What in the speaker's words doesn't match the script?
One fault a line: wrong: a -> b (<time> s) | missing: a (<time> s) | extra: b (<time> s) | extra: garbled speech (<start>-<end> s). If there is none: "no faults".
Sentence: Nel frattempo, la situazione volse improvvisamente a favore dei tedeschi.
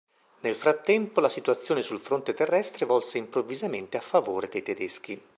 extra: sul fronte terrestre (1.8 s)